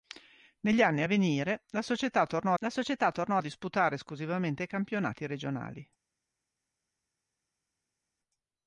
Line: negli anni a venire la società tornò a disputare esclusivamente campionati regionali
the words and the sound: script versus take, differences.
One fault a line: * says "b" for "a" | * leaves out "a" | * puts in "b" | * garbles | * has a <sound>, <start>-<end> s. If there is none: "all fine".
* puts in "la società tornò"